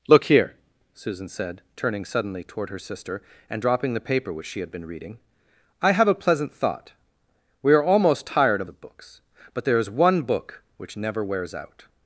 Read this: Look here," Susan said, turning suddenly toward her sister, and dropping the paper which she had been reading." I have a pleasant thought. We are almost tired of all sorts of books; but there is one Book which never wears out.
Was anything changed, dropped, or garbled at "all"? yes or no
yes